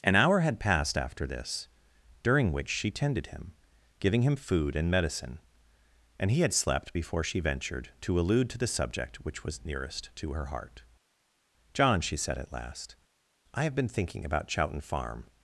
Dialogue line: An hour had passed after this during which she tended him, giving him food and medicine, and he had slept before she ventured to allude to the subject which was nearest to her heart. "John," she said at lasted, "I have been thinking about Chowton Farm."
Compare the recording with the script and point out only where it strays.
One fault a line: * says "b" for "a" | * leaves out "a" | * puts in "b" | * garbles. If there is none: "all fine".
* says "last" for "lasted"